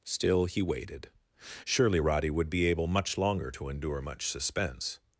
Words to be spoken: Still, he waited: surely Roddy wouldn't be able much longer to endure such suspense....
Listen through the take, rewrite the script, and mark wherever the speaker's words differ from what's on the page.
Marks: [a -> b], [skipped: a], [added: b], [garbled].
Still, he waited: surely Roddy [wouldn't -> would] be able much longer to endure [such -> much] suspense....